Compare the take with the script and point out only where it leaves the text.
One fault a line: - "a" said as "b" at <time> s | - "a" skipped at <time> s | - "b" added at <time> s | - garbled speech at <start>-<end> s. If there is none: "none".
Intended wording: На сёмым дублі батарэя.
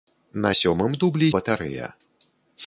none